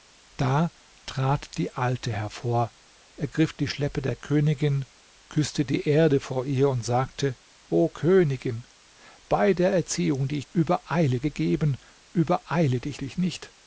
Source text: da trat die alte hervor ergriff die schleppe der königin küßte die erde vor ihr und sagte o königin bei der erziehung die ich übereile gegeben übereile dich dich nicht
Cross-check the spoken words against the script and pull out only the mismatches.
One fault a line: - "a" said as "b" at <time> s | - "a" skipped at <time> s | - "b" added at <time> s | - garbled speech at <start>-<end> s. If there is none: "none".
none